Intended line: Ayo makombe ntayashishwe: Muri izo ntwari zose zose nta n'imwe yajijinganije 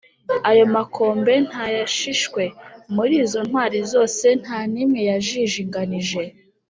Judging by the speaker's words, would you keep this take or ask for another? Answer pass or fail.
fail